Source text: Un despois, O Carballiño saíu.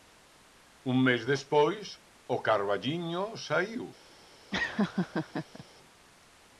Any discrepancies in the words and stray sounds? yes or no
yes